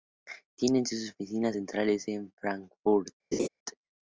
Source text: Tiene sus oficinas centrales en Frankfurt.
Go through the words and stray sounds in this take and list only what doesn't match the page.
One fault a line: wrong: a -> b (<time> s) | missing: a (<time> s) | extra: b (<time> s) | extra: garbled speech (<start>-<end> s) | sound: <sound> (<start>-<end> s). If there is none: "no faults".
sound: laugh (3.3-3.5 s)